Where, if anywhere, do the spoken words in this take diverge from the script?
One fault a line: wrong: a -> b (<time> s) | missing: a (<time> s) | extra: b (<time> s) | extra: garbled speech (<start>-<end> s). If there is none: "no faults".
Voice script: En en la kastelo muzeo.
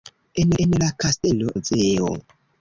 no faults